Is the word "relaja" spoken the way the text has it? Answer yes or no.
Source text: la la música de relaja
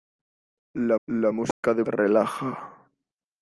yes